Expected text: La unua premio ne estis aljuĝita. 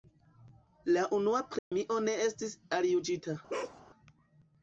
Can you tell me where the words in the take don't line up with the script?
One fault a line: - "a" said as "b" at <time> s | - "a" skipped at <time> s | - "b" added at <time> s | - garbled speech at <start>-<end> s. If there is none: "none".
none